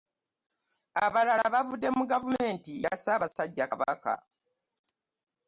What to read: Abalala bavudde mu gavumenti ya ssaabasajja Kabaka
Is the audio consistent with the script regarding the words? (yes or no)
yes